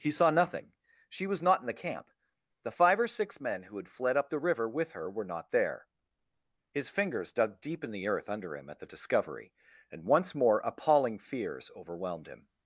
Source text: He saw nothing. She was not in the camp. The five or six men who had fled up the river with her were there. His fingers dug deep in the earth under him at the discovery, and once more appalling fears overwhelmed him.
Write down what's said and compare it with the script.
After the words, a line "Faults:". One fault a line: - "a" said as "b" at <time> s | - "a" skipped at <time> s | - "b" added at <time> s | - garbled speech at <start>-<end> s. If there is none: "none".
He saw nothing. She was not in the camp. The five or six men who had fled up the river with her were not there. His fingers dug deep in the earth under him at the discovery, and once more appalling fears overwhelmed him.
Faults:
- "not" added at 5.2 s